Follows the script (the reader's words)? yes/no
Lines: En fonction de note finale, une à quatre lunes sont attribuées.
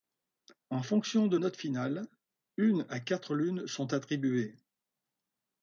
yes